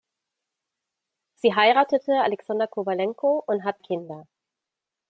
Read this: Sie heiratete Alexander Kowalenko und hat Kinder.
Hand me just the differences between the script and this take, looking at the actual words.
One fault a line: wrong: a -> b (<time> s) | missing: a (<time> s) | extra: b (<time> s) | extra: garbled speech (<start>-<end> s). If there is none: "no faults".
no faults